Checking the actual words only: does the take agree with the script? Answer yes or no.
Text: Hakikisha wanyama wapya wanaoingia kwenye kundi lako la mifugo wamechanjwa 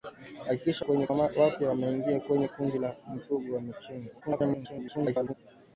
no